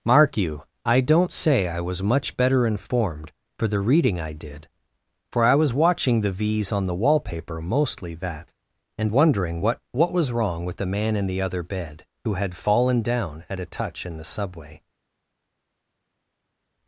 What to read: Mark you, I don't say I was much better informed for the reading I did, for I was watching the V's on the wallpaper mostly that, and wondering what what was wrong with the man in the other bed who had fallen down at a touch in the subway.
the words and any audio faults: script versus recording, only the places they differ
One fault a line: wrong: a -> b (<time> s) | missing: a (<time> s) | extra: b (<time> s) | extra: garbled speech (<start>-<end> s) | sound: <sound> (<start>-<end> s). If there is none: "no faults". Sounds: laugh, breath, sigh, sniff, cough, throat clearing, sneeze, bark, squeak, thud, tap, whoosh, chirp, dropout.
no faults